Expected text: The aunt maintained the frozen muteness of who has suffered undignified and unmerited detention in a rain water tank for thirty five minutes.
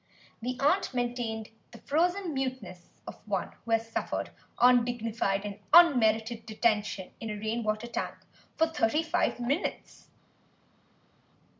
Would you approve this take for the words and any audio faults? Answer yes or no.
no